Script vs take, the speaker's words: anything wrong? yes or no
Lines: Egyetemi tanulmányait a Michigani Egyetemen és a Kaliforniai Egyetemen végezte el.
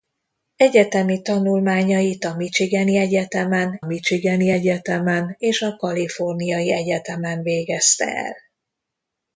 yes